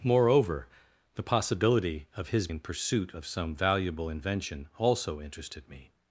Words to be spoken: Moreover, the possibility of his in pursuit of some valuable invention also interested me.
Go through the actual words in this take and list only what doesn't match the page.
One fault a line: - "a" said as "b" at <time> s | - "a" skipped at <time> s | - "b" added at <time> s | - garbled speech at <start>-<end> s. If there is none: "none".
none